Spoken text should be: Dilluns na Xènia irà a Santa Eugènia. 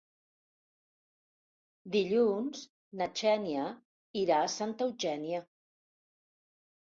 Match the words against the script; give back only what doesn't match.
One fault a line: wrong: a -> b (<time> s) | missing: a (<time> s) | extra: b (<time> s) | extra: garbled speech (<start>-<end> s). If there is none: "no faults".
no faults